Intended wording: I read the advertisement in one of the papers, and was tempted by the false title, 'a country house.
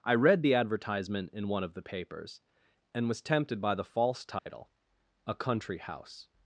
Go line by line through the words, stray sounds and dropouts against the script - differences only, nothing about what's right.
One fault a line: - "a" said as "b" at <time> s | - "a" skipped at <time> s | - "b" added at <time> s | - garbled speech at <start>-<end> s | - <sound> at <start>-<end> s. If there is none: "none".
- dropout at 4.4-4.5 s